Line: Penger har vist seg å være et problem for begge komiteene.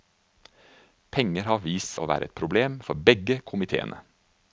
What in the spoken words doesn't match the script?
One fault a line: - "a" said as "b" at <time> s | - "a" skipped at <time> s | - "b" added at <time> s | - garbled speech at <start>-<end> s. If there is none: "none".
- "seg" skipped at 1.9 s